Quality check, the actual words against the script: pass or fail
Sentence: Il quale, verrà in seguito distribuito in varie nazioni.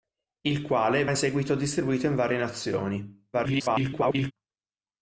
fail